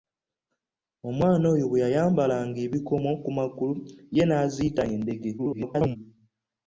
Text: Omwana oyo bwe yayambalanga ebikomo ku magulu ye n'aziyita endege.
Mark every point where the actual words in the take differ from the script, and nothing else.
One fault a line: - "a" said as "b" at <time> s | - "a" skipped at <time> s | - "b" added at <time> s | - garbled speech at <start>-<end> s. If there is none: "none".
- garbled speech at 5.4-6.0 s